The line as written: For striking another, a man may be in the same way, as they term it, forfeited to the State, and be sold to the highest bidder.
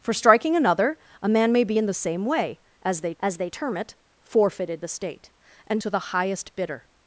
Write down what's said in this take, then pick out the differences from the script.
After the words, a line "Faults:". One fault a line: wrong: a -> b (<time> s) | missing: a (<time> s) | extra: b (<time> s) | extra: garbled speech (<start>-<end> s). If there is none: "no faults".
For striking another, a man may be in the same way, as they as they term it, forfeited the State, and to the highest bidder.
Faults:
extra: as they (3.2 s)
missing: to (4.8 s)
missing: be sold (5.8 s)